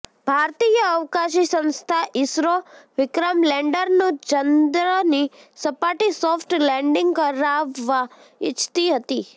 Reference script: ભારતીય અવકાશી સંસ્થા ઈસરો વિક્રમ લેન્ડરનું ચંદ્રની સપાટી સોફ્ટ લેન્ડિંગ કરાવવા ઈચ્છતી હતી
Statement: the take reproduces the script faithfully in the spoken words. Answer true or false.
true